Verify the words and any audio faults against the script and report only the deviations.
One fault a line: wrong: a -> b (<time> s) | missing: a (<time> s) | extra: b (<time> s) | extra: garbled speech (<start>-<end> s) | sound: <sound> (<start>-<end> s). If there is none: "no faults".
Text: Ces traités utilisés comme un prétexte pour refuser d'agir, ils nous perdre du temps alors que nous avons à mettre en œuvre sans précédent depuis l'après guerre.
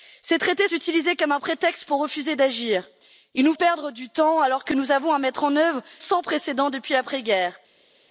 no faults